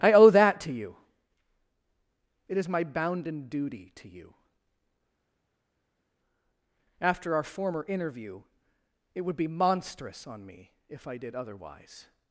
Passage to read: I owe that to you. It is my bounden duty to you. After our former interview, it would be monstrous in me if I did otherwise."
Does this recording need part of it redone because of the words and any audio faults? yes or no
yes